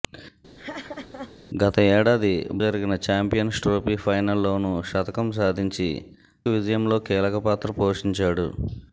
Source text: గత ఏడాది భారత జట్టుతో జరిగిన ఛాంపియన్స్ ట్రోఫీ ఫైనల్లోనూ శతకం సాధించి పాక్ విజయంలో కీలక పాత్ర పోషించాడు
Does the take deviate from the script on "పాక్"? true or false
true